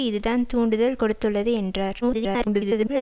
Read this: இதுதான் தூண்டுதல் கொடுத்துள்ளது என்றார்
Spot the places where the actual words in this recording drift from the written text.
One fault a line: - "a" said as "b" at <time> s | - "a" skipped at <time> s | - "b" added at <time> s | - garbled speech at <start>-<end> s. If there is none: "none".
- garbled speech at 2.0-3.0 s